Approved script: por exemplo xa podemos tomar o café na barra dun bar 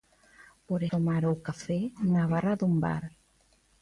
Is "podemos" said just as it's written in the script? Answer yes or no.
no